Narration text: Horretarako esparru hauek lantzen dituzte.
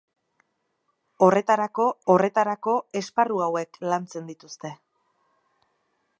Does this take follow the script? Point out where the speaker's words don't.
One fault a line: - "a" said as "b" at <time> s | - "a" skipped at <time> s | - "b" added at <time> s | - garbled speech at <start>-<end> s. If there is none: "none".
- "horretarako" added at 2.1 s